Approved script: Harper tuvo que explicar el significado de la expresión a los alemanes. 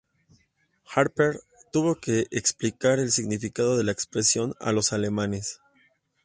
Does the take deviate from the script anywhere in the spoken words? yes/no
no